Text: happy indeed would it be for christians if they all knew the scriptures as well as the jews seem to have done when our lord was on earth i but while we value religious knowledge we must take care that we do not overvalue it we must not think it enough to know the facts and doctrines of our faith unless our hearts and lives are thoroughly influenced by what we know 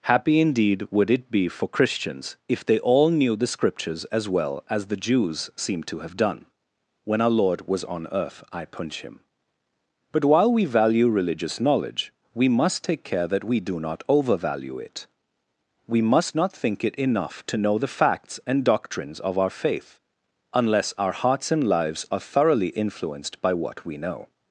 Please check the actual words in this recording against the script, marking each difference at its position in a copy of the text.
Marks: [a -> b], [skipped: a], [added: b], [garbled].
happy indeed would it be for christians if they all knew the scriptures as well as the jews seem to have done when our lord was on earth i [added: punch him] but while we value religious knowledge we must take care that we do not overvalue it we must not think it enough to know the facts and doctrines of our faith unless our hearts and lives are thoroughly influenced by what we know